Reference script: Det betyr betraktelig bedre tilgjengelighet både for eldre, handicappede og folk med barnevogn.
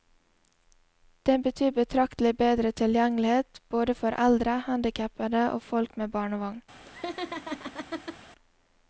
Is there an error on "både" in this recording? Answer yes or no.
no